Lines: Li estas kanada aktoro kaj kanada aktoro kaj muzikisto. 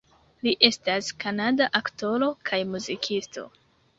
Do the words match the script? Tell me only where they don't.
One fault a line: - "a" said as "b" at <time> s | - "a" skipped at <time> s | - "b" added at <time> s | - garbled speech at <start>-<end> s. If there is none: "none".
- "kanada aktoro kaj" skipped at 2.6 s